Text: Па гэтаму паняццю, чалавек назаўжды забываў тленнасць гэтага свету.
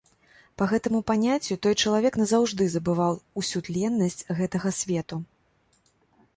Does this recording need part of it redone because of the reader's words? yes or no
yes